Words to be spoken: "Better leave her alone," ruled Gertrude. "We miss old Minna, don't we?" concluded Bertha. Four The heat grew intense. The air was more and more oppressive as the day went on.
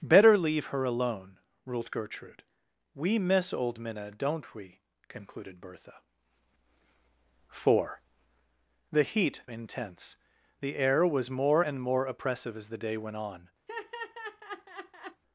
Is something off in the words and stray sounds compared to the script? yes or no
yes